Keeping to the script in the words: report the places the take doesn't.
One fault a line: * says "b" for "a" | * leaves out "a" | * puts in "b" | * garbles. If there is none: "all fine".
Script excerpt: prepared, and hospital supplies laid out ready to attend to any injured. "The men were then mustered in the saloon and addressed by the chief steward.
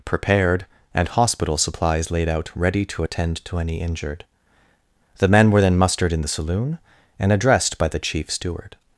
all fine